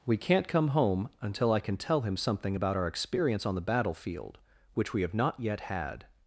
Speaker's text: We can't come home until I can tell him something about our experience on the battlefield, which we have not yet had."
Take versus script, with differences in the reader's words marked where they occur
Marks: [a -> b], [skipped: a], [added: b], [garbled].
We can't come home until I can tell him something about our experience on the battlefield, which we have not yet had."